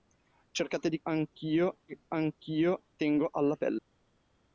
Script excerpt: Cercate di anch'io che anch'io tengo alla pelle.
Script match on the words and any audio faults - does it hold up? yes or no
yes